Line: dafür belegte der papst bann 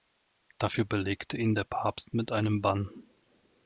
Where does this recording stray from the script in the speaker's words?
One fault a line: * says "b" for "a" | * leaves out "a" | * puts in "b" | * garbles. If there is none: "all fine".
* puts in "ihn"
* puts in "mit einem"